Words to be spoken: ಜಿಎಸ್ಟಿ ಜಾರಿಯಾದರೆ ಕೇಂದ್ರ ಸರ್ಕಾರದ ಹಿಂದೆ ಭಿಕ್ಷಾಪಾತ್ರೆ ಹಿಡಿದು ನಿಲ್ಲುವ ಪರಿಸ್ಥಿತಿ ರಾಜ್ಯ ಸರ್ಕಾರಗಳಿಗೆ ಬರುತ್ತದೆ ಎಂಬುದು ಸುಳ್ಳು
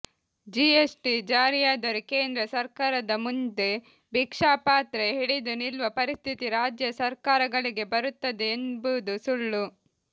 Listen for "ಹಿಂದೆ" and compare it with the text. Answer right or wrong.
wrong